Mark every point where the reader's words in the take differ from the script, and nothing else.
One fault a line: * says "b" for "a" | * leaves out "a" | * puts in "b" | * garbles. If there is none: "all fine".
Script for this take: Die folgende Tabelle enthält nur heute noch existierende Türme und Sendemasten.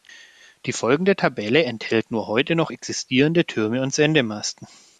all fine